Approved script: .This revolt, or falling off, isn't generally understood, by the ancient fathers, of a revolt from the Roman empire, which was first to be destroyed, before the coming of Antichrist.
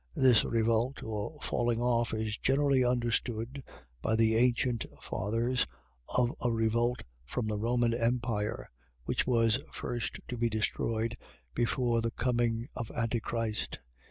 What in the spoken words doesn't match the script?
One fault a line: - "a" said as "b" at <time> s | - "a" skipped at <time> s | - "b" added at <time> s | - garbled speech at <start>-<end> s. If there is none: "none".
- "isn't" said as "is" at 2.1 s